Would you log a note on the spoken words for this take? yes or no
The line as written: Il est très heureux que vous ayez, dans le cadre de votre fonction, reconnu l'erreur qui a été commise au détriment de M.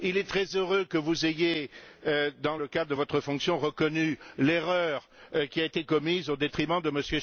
no